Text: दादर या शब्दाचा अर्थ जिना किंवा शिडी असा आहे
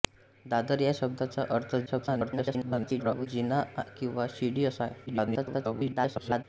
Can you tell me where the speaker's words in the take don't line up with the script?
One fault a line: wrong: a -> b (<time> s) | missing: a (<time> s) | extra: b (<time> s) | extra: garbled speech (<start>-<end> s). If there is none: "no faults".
extra: garbled speech (1.9-3.3 s)
extra: garbled speech (5.1-6.4 s)